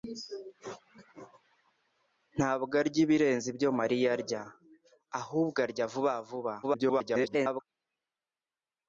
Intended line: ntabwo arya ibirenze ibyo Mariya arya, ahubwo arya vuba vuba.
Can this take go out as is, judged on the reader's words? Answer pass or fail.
fail